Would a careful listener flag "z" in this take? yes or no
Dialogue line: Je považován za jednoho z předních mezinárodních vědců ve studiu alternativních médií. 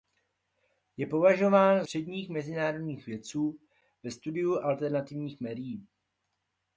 yes